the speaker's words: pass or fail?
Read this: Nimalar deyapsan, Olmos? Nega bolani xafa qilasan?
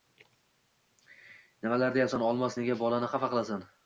pass